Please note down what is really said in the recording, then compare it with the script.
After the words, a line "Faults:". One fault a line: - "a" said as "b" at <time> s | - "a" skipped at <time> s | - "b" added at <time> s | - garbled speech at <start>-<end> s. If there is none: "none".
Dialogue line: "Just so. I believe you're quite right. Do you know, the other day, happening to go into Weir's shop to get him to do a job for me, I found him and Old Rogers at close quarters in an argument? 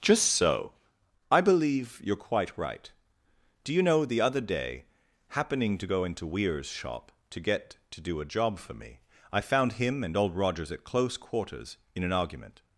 "Just so. I believe you're quite right. Do you know, the other day, happening to go into Weir's shop to get to do a job for me, I found him and Old Rogers at close quarters in an argument?
Faults:
- "him" skipped at 7.8 s